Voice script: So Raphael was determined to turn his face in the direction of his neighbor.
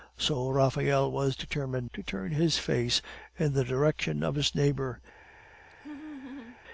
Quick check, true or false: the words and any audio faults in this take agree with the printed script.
false